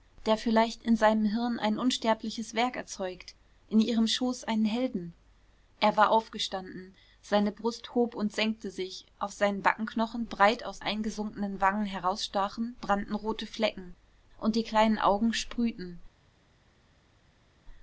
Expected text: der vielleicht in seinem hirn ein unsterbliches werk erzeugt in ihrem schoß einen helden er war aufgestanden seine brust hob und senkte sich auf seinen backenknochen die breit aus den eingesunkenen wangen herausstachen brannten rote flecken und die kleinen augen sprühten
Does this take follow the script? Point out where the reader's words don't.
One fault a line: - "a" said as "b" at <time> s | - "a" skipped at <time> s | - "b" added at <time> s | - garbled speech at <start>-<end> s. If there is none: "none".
- "die" skipped at 10.2 s
- "den" skipped at 10.8 s